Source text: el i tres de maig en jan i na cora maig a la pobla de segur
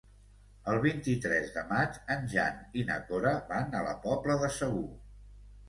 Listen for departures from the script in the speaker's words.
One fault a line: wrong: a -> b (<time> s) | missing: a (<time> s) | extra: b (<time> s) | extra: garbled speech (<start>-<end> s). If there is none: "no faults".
extra: vint (0.8 s)
wrong: maig -> van (3.5 s)